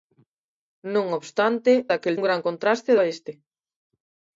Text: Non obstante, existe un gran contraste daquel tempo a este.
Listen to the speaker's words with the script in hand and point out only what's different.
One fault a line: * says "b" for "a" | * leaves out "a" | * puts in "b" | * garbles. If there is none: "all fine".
* says "daquel" for "existe"
* leaves out "daquel tempo"